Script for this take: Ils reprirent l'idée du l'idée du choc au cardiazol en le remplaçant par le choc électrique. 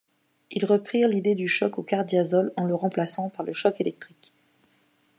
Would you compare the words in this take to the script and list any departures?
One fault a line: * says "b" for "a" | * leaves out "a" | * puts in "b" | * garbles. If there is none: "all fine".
* leaves out "l'idée du"